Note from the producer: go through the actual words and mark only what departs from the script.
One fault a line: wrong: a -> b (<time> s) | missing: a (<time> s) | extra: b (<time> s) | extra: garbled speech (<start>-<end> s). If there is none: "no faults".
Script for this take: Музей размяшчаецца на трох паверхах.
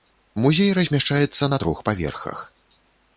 no faults